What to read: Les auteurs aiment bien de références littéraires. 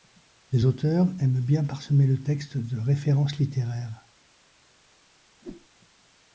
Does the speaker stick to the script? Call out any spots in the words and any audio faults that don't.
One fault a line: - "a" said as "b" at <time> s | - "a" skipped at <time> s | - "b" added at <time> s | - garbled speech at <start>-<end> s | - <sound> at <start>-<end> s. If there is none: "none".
- "parsemer le texte" added at 1.6 s
- whoosh at 5.4-5.7 s